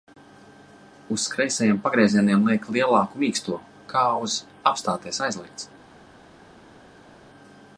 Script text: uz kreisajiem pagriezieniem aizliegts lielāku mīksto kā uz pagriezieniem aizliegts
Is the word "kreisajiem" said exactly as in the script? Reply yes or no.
yes